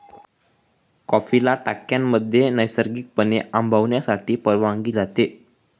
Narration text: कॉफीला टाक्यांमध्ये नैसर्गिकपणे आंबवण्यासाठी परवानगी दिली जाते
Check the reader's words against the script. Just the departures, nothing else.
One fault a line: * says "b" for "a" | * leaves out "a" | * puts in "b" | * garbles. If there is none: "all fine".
* leaves out "दिली"